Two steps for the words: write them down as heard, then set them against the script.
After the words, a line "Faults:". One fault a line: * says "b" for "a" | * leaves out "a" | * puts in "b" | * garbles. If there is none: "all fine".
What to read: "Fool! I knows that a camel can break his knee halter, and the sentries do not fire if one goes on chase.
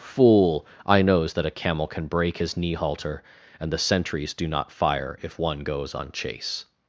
"Fool! I knows that a camel can break his knee halter, and the sentries do not fire if one goes on chase.
Faults:
all fine